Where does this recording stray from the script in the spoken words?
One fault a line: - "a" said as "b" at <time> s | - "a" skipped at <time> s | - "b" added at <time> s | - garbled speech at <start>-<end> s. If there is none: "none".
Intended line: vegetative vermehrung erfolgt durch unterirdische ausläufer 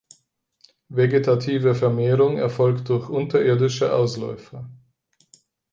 none